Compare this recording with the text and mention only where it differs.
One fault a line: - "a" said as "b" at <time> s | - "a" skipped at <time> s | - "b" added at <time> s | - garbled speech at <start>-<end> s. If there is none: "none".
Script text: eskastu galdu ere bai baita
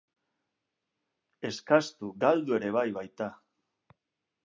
none